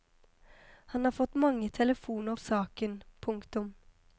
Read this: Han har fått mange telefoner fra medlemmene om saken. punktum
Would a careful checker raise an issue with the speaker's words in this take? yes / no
yes